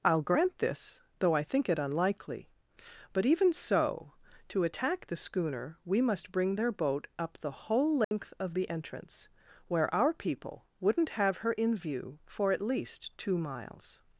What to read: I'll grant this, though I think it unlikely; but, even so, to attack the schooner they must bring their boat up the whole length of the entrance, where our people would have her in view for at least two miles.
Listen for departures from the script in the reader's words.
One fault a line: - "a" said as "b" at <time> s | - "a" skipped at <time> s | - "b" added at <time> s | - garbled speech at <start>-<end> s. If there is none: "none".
- "they" said as "we" at 5.8 s
- "would" said as "wouldn't" at 10.8 s